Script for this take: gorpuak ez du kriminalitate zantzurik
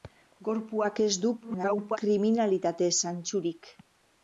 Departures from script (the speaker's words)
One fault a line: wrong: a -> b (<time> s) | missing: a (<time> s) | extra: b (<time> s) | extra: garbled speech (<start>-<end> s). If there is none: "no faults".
extra: garbled speech (1.4-2.0 s)